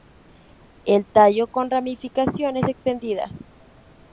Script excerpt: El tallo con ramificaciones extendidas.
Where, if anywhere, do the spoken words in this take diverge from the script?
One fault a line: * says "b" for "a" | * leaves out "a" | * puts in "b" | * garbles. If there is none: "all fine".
all fine